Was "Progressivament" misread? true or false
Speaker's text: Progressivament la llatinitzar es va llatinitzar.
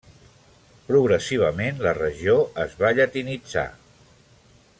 false